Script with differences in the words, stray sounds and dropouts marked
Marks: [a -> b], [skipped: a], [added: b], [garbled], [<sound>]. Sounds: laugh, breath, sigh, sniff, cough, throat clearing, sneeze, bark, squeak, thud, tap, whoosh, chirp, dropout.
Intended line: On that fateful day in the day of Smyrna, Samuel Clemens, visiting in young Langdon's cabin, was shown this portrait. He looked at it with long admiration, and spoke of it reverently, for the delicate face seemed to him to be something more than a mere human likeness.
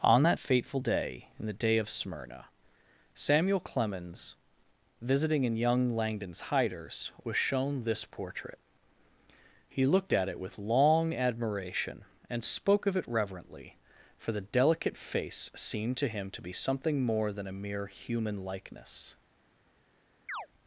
On that fateful day in the day of Smyrna, Samuel Clemens, visiting in young Langdon's [cabin, -> hiders] was shown this portrait. He looked at it with long admiration, and spoke of it reverently, for the delicate face seemed to him to be something more than a mere human likeness. [chirp]